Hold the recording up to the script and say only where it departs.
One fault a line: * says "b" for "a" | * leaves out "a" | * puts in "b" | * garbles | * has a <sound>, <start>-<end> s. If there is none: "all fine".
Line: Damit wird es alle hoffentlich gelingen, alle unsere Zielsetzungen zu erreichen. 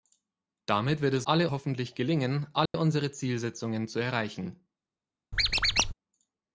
* has a dropout, 2.7-2.7 s
* has a squeak, 5.3-5.9 s